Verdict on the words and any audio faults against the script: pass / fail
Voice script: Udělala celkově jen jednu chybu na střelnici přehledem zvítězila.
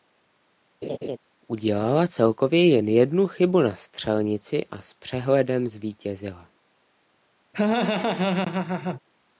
fail